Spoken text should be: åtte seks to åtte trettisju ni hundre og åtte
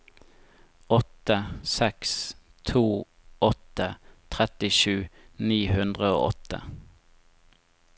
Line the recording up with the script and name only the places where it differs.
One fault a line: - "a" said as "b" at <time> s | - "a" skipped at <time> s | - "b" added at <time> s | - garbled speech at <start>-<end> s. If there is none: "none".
none